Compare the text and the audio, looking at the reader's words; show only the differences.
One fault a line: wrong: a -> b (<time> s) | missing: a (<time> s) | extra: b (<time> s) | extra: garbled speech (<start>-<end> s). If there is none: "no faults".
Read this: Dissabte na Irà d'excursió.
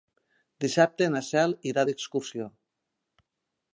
extra: Cel (1.3 s)